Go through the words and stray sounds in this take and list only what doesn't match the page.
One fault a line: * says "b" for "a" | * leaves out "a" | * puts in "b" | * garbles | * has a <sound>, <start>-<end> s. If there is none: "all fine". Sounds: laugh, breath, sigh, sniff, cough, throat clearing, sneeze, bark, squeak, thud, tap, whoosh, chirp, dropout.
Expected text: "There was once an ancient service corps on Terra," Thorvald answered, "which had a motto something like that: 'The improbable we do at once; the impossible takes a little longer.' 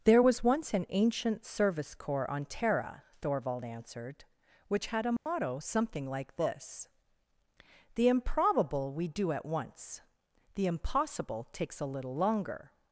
* has a dropout, 5.2-5.3 s
* says "this" for "that"